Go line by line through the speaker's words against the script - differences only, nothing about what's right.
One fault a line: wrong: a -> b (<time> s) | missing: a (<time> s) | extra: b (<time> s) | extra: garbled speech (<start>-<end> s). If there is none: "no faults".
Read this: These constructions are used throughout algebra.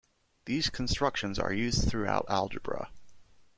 no faults